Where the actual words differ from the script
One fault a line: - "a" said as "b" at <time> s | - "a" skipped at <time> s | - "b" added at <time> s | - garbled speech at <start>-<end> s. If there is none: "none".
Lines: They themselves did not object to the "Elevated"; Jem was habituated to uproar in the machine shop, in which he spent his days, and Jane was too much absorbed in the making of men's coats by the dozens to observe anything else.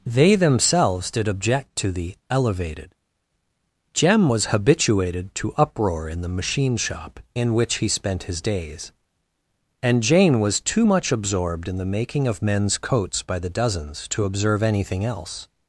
- "not" skipped at 1.3 s